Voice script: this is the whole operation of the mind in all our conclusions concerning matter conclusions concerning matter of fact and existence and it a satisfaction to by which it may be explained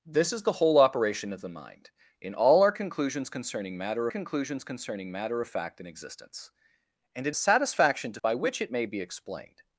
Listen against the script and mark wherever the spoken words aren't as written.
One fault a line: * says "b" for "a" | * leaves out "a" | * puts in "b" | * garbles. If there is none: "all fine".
all fine